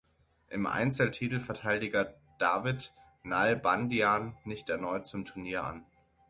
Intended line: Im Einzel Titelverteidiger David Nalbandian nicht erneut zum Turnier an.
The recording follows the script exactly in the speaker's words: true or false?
true